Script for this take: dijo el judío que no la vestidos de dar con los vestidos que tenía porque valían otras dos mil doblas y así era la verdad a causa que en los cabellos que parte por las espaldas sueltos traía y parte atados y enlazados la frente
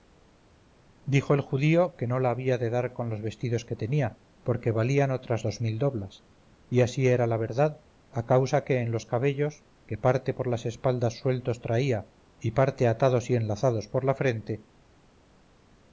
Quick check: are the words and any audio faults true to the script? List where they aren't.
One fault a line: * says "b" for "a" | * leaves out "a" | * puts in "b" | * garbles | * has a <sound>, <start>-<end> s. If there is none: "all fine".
* says "había" for "vestidos"
* puts in "por"